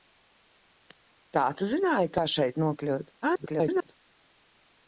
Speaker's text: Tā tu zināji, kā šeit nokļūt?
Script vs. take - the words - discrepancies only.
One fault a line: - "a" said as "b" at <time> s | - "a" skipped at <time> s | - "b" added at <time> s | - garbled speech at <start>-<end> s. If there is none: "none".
- garbled speech at 3.2-4.0 s